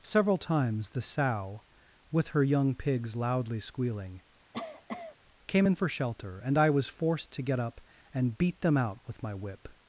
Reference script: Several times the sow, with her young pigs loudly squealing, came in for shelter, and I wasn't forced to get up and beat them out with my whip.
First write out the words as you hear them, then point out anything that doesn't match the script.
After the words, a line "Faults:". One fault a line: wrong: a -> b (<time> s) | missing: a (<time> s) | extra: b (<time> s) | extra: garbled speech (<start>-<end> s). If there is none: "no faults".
Several times the sow, with her young pigs loudly squealing, came in for shelter, and I was forced to get up and beat them out with my whip.
Faults:
wrong: wasn't -> was (6.7 s)